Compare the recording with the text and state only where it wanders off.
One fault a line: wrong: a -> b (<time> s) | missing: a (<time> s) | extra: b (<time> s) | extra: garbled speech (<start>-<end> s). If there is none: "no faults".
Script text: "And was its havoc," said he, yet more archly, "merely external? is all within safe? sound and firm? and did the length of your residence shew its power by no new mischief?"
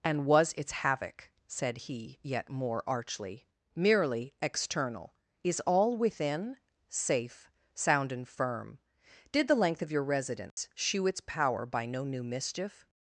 missing: and (8.8 s)